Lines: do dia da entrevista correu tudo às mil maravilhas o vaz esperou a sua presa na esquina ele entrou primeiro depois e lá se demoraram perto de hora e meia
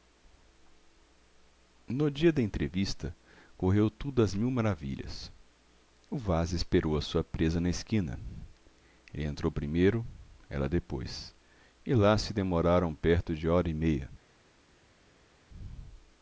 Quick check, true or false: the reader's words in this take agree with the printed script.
false